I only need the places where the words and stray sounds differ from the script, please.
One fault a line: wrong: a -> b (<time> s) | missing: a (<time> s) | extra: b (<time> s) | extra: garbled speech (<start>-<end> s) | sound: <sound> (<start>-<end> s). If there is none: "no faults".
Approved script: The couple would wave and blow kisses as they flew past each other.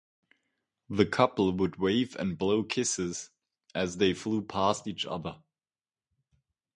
no faults